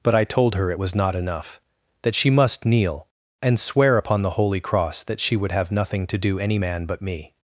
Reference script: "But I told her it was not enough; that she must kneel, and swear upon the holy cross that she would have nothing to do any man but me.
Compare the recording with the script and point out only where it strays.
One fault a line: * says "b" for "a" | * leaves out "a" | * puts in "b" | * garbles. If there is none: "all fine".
all fine